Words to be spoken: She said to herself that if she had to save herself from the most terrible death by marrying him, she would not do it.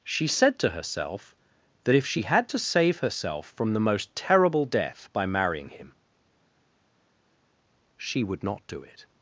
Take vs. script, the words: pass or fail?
pass